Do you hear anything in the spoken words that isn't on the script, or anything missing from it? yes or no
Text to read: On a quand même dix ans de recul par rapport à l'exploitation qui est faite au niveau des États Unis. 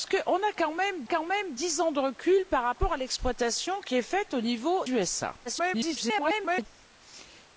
yes